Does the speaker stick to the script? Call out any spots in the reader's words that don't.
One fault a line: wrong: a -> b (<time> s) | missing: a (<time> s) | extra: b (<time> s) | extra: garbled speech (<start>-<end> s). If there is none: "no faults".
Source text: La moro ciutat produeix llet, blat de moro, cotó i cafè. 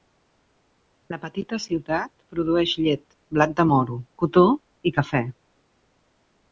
wrong: moro -> petita (1.2 s)